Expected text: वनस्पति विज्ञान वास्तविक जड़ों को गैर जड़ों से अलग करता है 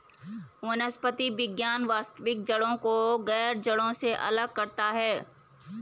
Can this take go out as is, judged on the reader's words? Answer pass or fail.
pass